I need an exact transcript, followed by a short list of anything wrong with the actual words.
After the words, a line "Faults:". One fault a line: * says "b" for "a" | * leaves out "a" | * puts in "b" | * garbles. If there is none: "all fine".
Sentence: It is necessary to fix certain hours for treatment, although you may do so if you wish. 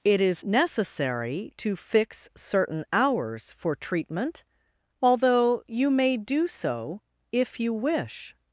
It is necessary to fix certain hours for treatment, although you may do so if you wish.
Faults:
all fine